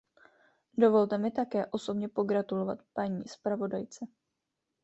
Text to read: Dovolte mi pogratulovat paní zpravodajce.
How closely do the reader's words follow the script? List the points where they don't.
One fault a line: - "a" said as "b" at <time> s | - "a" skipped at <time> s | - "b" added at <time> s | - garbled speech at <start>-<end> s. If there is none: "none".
- "také osobně" added at 1.3 s